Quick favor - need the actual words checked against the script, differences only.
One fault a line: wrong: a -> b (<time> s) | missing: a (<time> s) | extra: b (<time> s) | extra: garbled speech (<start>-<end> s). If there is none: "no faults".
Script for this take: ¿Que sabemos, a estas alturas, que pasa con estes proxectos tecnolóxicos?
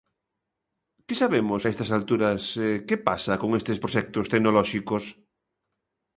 no faults